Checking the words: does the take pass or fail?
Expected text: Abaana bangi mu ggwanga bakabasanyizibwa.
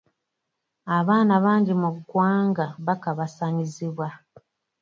pass